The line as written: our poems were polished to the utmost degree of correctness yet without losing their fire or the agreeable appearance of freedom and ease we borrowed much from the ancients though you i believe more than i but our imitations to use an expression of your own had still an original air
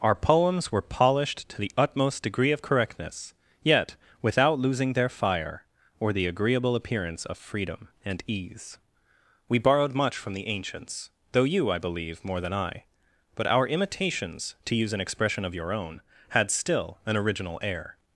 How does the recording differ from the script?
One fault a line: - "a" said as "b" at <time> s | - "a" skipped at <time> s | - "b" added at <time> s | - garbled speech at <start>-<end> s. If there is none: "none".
none